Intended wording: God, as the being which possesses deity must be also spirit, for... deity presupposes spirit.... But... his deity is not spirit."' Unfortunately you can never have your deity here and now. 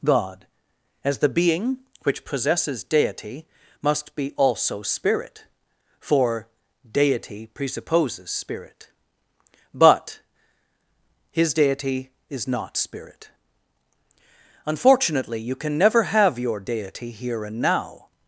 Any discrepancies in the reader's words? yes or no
no